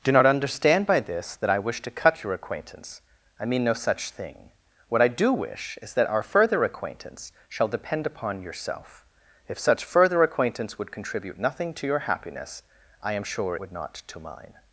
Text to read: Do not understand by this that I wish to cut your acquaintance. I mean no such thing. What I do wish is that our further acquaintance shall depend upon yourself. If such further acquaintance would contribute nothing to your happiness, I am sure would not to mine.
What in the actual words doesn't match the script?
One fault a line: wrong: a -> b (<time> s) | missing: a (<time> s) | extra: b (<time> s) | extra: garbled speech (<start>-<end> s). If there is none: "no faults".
no faults